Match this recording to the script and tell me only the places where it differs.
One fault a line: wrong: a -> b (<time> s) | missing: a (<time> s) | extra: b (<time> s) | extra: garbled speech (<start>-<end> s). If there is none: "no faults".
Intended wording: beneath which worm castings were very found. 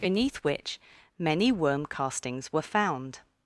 extra: many (1.2 s)
missing: very (2.6 s)